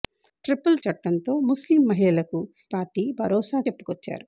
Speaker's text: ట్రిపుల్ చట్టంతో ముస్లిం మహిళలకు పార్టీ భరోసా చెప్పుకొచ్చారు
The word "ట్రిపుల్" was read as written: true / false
true